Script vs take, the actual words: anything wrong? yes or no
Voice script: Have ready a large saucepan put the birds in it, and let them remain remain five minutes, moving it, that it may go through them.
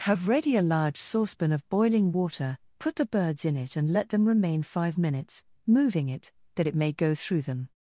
yes